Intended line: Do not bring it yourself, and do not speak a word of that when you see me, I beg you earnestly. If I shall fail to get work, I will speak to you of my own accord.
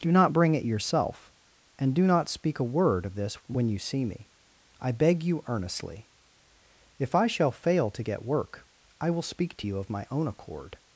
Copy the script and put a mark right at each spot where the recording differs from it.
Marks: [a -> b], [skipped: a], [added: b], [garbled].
Do not bring it yourself, and do not speak a word of [that -> this] when you see me, I beg you earnestly. If I shall fail to get work, I will speak to you of my own accord.